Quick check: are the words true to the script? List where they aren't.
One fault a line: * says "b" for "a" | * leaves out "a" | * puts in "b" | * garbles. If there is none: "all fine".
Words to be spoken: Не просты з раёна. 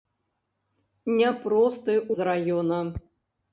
all fine